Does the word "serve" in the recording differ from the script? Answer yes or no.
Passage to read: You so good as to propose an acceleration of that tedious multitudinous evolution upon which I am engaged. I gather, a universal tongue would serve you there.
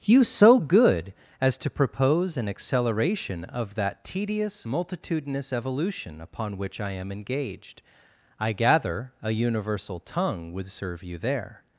no